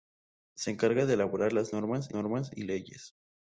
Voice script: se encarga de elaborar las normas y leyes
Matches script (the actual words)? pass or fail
fail